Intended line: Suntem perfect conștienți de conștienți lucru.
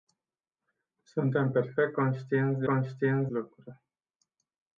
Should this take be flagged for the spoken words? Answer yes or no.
no